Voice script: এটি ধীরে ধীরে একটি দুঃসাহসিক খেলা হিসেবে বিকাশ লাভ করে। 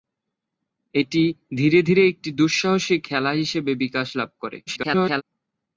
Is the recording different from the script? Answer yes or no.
yes